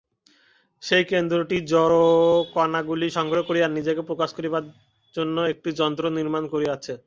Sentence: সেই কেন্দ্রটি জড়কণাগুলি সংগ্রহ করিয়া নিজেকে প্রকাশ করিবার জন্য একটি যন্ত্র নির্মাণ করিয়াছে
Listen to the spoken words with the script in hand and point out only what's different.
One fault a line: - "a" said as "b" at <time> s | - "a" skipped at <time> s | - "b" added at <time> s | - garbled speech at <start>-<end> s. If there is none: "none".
none